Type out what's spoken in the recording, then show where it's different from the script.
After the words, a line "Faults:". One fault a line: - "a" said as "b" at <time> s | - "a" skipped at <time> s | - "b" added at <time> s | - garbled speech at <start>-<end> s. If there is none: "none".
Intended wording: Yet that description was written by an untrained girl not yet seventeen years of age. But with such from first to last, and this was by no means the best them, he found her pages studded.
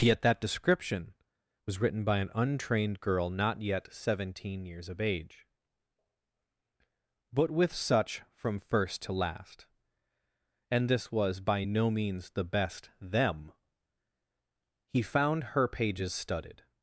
Yet that description was written by an untrained girl not yet seventeen years of age. But with such from first to last, and this was by no means the best them, he found her pages studded.
Faults:
none